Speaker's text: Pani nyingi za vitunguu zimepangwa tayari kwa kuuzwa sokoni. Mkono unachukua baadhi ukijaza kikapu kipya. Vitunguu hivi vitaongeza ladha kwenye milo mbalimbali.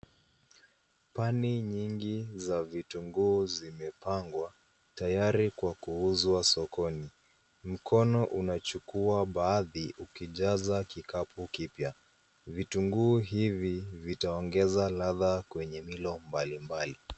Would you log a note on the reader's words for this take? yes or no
no